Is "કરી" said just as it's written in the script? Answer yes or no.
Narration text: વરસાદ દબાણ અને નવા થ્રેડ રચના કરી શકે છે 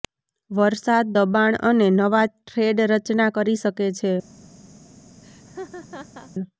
yes